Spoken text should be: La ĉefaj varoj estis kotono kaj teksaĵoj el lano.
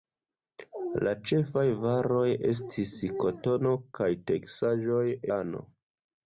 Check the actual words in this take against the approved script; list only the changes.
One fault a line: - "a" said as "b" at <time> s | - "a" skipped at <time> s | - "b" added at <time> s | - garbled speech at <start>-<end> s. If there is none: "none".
- "el" skipped at 5.1 s